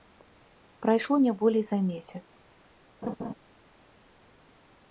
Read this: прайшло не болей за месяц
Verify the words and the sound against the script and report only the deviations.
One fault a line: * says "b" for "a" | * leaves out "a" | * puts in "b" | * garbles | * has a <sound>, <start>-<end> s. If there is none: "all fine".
* has a laugh, 3.0-3.3 s